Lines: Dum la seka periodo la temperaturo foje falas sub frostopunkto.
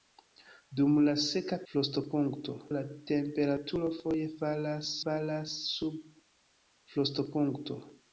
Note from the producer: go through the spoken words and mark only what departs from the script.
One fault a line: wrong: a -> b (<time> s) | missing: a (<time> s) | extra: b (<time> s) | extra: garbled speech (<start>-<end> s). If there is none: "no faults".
wrong: periodo -> frostopunkto (1.7 s)
extra: falas (5.0 s)